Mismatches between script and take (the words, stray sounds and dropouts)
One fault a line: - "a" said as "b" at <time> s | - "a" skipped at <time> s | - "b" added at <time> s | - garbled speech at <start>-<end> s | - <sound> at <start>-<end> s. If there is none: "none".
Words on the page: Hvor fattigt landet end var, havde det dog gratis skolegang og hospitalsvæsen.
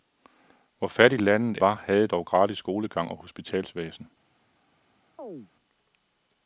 - "end" skipped at 1.6 s
- "det" skipped at 2.1 s
- chirp at 5.2-5.5 s